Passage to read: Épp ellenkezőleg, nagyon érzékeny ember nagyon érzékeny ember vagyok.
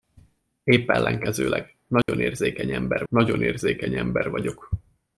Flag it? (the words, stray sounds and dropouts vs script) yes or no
yes